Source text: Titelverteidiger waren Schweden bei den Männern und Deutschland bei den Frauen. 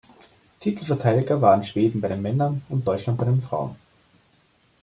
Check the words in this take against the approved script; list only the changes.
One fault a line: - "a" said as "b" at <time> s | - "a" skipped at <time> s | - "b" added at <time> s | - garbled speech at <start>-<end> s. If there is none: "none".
none